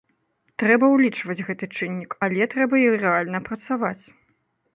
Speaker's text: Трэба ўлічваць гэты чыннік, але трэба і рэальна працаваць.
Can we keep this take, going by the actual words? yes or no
yes